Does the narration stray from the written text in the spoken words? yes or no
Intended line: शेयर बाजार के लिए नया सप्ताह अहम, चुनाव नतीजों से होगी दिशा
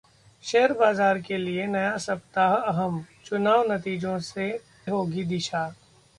no